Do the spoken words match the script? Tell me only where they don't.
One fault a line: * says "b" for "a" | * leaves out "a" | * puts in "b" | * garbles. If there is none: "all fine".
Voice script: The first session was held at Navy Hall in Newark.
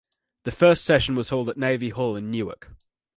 all fine